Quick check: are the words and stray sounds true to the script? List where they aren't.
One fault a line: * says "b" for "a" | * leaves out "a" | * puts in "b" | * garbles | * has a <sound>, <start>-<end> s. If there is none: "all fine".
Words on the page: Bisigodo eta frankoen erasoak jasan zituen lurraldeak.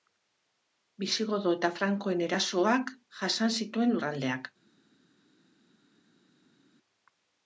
all fine